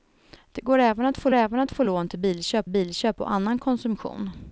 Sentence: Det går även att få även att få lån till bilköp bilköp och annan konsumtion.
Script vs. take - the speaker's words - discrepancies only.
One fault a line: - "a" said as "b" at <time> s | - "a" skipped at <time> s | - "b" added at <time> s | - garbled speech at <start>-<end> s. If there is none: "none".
none